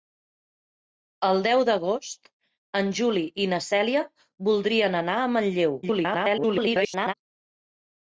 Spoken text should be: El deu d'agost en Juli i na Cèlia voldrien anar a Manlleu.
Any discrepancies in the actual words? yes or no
yes